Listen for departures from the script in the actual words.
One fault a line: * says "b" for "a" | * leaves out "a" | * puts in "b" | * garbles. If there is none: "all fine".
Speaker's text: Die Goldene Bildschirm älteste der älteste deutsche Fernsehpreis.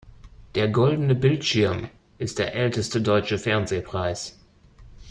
* says "Der" for "Die"
* says "ist" for "älteste"